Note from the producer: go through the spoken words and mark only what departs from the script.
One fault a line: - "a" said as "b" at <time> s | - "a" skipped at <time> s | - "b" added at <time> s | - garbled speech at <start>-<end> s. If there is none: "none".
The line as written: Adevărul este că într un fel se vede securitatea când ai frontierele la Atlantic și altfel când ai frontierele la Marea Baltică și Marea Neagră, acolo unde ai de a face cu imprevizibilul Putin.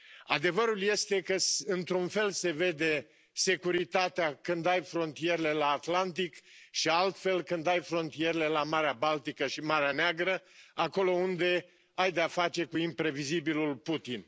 none